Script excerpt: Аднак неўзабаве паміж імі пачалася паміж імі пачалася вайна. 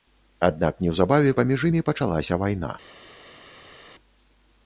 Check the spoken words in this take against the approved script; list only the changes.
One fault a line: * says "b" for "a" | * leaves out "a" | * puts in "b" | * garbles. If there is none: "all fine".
* leaves out "паміж імі пачалася"